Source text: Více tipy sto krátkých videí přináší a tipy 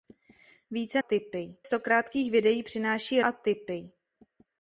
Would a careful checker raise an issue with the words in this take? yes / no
no